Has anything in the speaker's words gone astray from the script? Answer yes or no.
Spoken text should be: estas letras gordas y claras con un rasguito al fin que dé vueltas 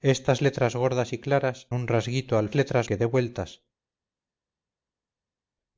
yes